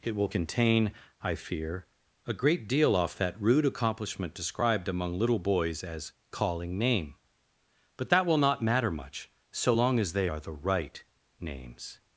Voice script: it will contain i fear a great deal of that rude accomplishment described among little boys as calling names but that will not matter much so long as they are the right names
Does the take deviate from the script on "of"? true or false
true